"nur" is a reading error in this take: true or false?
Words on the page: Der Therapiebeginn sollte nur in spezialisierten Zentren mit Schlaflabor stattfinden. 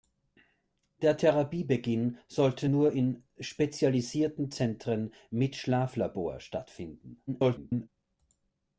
false